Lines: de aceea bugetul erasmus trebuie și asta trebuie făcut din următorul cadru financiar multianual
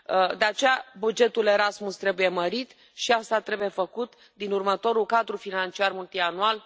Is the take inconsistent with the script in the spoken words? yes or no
yes